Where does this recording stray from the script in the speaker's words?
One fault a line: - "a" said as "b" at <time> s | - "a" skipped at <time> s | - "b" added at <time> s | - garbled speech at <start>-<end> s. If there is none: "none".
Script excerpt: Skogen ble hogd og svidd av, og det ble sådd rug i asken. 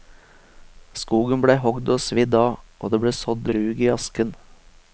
none